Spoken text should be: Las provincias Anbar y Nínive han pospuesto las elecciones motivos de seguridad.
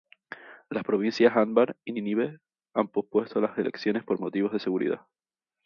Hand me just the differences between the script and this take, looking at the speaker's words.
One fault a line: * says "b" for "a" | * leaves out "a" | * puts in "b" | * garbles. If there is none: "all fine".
* puts in "por"